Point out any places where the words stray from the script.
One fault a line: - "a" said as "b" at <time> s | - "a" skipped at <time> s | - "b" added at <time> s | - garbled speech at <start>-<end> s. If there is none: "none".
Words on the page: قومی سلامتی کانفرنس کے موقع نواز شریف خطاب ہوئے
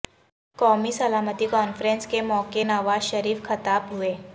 none